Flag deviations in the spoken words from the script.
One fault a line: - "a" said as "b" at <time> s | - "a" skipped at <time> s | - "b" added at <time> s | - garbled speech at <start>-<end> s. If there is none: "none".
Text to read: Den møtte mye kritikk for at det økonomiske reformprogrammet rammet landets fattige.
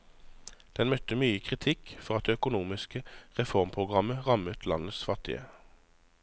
none